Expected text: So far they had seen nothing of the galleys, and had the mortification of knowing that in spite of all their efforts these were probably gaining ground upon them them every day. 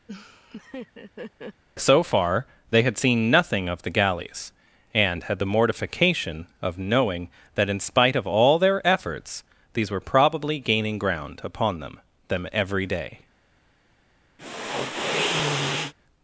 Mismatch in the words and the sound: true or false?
true